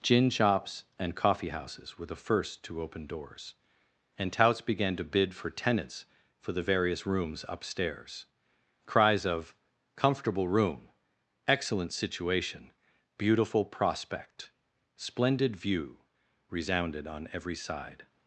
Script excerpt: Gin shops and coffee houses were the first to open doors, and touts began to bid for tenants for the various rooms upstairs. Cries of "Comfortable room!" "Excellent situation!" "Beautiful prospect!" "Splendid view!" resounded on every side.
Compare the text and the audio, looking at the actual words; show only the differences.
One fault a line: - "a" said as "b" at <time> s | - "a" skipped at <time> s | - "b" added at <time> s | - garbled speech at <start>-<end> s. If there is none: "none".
none